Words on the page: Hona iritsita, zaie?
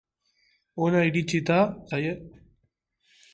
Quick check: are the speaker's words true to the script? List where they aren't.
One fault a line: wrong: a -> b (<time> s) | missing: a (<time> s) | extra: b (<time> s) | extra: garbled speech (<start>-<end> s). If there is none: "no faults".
no faults